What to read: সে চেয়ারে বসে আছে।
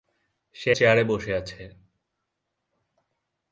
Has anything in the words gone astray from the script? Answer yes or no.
no